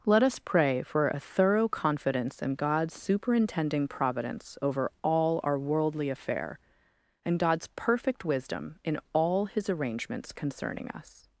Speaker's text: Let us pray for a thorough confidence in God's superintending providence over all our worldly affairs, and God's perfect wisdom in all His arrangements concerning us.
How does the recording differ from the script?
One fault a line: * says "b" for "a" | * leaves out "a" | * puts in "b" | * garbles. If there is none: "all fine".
* says "affair" for "affairs"